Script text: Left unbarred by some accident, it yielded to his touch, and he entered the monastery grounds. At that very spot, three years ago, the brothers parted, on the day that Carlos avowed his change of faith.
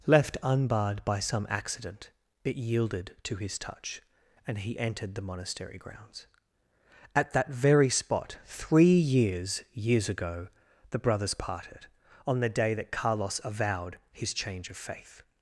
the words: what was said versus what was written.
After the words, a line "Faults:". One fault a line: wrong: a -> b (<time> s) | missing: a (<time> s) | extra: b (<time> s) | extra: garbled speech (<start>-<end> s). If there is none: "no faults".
Left unbarred by some accident, it yielded to his touch, and he entered the monastery grounds. At that very spot, three years years ago, the brothers parted, on the day that Carlos avowed his change of faith.
Faults:
extra: years (9.7 s)